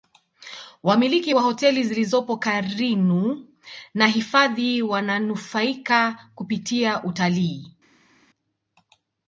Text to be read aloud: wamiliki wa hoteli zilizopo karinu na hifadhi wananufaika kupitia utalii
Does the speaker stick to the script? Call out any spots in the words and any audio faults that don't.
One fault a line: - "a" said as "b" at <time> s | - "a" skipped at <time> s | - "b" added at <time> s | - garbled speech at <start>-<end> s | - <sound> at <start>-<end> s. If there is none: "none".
none